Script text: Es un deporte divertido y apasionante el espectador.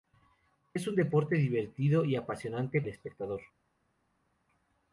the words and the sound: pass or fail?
pass